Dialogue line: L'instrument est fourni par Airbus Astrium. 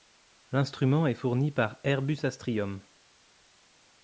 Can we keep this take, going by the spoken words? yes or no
yes